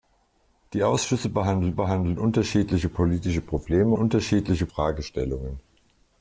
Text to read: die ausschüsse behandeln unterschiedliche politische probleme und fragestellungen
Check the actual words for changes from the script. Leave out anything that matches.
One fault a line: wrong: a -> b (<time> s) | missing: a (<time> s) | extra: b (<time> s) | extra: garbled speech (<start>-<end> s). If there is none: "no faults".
extra: behandeln (1.7 s)
wrong: und -> unterschiedliche (3.9 s)